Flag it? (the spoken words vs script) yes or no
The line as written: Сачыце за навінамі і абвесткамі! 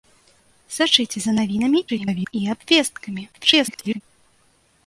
yes